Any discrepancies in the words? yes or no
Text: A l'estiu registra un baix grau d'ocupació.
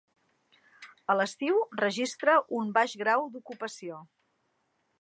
no